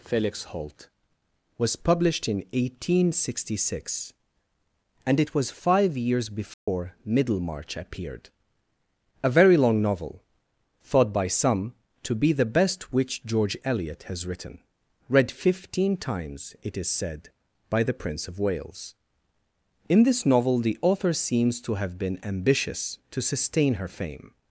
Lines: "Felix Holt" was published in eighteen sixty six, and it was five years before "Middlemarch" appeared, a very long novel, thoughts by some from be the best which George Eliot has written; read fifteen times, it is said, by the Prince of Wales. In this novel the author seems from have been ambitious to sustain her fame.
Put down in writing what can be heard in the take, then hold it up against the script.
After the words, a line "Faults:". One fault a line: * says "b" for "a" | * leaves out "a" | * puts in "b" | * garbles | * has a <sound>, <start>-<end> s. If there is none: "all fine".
"Felix Holt" was published in eighteen sixty six, and it was five years before "Middlemarch" appeared, a very long novel, thought by some to be the best which George Eliot has written; read fifteen times, it is said, by the Prince of Wales. In this novel the author seems to have been ambitious to sustain her fame.
Faults:
* has a dropout, 6.5-6.7 s
* says "thought" for "thoughts"
* says "to" for "from"
* says "to" for "from"